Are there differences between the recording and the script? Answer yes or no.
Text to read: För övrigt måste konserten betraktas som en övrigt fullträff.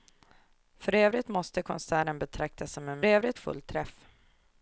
no